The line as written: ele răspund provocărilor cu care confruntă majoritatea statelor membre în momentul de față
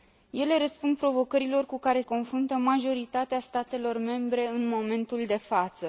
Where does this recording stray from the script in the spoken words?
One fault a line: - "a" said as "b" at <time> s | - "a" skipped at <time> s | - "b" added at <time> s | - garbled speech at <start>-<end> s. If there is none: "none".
none